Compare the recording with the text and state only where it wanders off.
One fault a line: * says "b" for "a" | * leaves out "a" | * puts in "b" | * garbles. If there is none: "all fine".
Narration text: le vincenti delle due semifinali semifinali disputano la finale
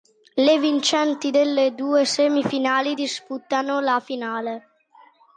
* leaves out "semifinali"